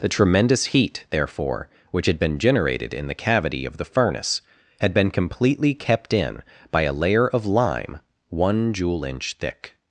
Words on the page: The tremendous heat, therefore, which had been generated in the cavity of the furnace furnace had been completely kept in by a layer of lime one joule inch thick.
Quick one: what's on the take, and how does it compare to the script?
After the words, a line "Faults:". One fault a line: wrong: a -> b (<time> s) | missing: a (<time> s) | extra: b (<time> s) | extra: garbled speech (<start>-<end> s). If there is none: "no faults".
The tremendous heat, therefore, which had been generated in the cavity of the furnace had been completely kept in by a layer of lime one joule inch thick.
Faults:
missing: furnace (4.4 s)